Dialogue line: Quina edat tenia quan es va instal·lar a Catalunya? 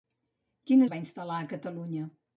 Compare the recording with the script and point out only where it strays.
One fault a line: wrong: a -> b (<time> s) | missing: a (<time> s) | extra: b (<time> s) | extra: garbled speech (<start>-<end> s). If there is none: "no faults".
missing: edat tenia quan (0.9 s)